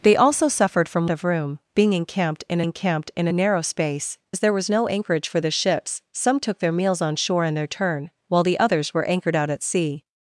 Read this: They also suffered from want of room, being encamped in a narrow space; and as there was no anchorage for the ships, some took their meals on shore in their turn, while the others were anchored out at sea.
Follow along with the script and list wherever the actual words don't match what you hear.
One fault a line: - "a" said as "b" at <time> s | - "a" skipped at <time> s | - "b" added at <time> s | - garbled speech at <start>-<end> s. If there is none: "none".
- "want" skipped at 1.1 s
- "encamped in" added at 2.6 s
- "and" skipped at 4.2 s